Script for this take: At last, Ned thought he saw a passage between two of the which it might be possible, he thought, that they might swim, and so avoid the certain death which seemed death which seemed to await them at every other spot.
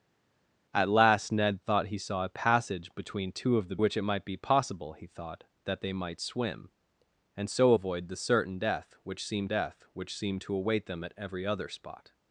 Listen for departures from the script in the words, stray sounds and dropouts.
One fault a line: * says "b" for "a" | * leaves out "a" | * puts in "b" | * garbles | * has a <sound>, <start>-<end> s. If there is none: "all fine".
all fine